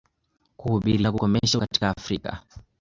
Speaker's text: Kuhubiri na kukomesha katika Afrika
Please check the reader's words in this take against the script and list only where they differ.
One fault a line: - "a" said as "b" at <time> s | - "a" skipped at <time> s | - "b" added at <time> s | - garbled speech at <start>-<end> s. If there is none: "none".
none